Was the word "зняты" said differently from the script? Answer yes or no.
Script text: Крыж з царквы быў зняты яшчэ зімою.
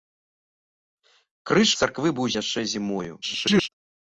yes